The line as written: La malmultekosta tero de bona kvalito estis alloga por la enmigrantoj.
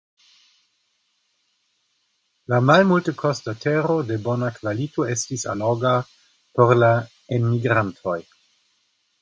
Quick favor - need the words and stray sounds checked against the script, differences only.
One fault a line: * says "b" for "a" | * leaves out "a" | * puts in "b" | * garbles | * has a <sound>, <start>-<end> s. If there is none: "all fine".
all fine